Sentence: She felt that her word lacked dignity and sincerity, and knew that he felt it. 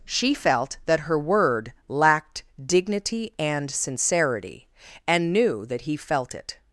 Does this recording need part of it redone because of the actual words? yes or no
no